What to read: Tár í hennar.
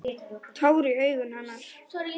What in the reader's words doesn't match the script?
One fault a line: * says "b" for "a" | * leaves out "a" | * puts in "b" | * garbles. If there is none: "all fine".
* puts in "augum"